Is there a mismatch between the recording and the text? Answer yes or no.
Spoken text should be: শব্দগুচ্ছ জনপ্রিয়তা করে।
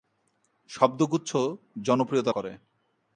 no